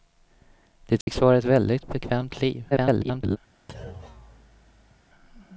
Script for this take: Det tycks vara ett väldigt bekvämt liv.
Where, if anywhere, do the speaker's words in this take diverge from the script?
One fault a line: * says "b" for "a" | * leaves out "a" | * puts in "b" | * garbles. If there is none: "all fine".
* garbles